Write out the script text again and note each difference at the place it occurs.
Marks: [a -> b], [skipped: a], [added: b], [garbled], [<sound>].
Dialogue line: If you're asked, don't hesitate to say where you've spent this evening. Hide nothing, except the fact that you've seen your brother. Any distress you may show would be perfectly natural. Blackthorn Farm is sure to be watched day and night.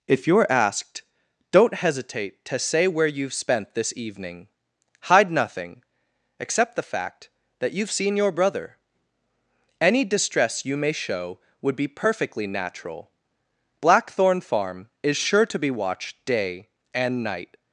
If you're asked, don't hesitate to say where you've spent this evening. Hide nothing, except the fact that you've seen your brother. Any distress you may show would be perfectly natural. Blackthorn Farm is sure to be watched day and night.